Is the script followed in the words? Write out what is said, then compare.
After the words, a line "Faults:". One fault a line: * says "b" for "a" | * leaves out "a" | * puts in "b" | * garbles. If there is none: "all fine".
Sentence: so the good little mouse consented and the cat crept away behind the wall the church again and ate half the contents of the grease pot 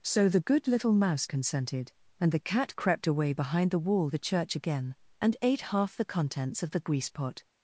so the good little mouse consented and the cat crept away behind the wall the church again and ate half the contents of the grease pot
Faults:
all fine